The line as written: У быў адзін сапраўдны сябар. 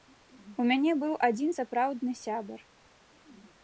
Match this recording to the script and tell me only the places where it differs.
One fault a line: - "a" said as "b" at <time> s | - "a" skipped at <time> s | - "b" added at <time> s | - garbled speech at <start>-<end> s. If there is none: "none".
- "мяне" added at 0.7 s